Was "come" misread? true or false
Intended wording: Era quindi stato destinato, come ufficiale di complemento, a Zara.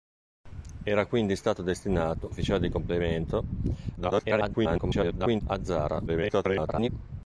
true